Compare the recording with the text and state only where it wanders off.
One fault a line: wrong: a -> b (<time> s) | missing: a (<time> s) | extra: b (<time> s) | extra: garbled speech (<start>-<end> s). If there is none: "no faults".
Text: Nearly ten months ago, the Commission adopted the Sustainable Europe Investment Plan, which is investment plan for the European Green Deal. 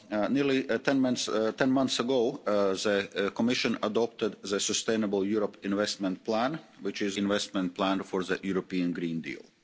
no faults